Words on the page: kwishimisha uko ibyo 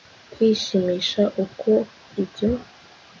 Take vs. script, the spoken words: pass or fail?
pass